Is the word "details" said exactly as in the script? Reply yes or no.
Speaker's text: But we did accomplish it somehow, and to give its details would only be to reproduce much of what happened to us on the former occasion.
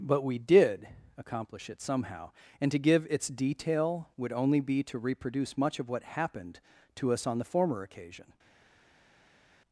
no